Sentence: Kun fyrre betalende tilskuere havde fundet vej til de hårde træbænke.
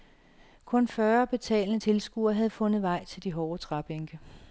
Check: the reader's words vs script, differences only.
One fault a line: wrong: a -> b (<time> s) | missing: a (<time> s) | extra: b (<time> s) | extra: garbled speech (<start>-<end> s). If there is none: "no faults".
no faults